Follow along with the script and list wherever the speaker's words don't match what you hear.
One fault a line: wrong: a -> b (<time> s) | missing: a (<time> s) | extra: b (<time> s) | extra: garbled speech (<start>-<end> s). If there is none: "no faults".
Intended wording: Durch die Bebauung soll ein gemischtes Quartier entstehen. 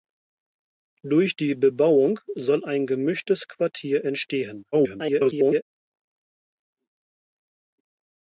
extra: garbled speech (4.7-5.6 s)